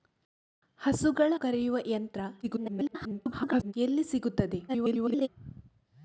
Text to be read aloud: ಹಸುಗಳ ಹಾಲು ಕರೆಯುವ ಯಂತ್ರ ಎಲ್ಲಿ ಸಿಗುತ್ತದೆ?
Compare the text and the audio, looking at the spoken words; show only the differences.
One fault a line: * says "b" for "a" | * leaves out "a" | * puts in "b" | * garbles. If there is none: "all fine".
* leaves out "ಹಾಲು"
* garbles
* garbles